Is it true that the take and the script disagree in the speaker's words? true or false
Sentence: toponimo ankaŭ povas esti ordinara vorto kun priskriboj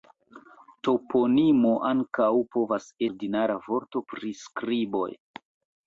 true